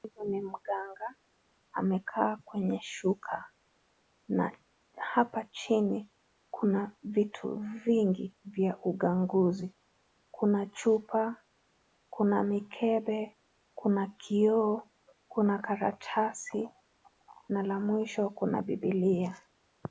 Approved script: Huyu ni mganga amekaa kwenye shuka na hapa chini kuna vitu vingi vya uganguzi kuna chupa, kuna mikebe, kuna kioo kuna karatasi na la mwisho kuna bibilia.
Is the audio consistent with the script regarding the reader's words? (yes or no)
yes